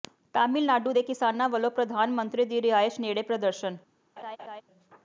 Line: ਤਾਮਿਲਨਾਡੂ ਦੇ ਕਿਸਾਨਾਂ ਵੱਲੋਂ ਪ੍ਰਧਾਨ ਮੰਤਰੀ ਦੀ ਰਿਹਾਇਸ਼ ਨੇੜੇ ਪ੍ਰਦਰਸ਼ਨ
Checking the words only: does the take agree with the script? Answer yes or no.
yes